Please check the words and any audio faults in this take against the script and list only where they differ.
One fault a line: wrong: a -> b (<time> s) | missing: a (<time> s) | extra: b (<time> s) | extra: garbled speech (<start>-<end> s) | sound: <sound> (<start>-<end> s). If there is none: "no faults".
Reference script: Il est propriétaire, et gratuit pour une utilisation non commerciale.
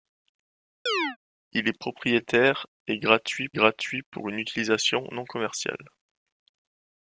sound: chirp (0.9-1.2 s)
extra: gratuit (3.5 s)